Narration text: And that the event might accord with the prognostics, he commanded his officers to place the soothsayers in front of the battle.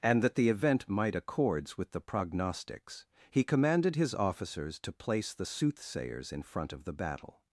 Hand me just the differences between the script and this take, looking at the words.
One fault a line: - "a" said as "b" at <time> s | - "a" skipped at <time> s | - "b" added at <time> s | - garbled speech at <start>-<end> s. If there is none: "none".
- "accord" said as "accords" at 1.1 s